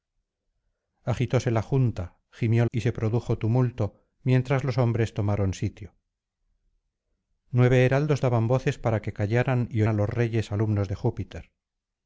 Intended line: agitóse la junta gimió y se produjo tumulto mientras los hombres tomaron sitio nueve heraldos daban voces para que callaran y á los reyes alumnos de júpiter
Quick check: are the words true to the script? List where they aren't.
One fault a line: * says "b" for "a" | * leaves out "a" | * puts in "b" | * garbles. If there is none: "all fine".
all fine